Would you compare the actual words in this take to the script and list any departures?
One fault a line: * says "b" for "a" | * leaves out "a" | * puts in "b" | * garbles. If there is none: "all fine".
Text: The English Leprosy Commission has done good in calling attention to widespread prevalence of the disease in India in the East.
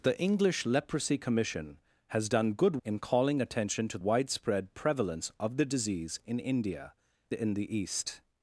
all fine